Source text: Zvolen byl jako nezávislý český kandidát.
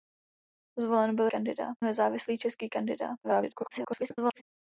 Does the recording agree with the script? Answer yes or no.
no